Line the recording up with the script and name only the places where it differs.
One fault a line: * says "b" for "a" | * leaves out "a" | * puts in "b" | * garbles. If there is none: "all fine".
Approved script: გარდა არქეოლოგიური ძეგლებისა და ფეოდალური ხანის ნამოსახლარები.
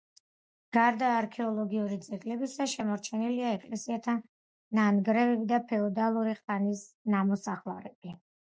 * puts in "შემორჩენილია ეკლესიათა ნანგრევები"